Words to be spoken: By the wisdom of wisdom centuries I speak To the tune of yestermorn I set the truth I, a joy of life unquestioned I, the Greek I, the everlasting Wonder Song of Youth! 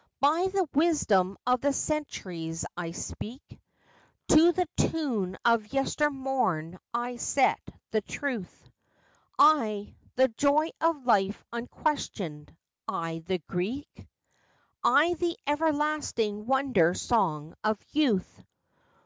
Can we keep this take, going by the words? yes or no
no